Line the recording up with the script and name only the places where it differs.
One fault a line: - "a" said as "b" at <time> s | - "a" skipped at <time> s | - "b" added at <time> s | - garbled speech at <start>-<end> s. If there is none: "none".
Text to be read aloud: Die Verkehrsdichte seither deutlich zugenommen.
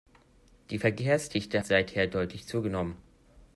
none